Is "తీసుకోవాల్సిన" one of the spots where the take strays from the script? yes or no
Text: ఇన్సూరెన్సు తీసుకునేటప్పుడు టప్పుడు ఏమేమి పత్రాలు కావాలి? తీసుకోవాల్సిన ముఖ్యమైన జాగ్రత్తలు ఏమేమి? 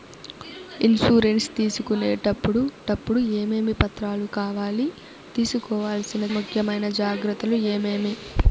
no